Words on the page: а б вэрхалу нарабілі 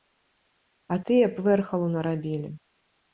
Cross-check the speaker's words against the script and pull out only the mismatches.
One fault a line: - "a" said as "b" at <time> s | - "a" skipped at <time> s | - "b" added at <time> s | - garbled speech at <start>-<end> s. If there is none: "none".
- "тыя" added at 1.1 s